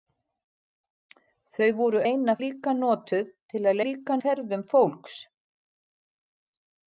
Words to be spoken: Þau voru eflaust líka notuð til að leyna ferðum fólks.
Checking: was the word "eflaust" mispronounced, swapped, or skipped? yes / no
yes